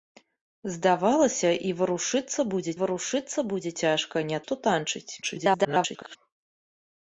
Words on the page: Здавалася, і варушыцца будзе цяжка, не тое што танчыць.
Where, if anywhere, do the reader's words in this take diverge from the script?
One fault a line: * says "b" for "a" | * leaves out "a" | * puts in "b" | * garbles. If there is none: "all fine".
* puts in "варушыцца будзе"
* leaves out "тое"
* garbles